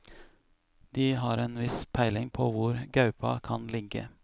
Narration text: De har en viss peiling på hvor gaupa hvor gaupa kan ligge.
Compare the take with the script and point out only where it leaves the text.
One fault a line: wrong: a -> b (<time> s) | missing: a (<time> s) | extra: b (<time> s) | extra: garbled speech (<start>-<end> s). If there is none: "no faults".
missing: hvor gaupa (3.4 s)